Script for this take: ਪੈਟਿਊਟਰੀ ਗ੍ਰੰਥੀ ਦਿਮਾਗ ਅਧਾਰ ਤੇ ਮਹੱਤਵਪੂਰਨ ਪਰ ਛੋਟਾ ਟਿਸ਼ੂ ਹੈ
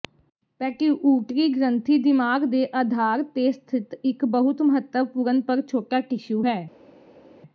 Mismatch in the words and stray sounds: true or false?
true